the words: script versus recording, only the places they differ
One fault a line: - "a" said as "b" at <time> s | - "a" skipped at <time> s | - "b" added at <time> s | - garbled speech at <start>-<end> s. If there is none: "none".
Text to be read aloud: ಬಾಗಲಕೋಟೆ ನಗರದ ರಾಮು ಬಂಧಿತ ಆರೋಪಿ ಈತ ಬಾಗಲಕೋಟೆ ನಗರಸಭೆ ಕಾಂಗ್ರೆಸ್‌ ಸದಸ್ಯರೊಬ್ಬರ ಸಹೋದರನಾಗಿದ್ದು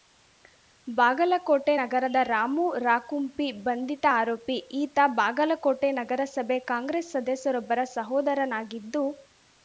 - "ರಾಕುಂಪಿ" added at 2.8 s